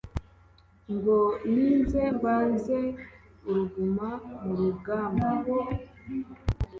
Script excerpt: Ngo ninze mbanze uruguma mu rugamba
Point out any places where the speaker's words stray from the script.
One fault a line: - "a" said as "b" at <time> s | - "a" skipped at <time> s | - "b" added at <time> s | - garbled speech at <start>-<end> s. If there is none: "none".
none